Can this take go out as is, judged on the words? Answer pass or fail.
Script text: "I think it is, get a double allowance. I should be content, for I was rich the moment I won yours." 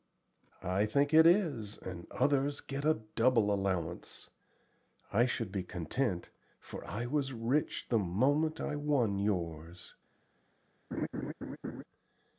fail